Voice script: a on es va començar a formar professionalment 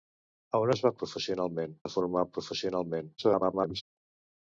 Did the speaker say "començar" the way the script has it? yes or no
no